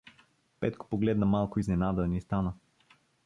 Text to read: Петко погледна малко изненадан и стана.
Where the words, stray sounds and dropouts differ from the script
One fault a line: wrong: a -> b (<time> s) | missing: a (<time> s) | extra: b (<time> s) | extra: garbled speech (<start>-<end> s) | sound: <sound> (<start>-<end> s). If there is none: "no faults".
no faults